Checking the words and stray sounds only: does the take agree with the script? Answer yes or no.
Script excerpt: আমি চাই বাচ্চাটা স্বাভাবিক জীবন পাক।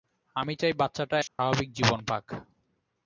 no